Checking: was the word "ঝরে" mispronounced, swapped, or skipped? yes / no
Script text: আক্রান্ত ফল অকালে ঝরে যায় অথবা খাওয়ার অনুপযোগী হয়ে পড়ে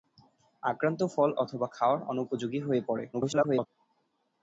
yes